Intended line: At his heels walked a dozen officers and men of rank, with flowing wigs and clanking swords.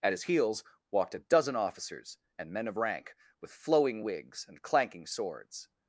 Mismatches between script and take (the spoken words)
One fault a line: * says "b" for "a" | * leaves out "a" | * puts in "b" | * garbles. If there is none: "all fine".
all fine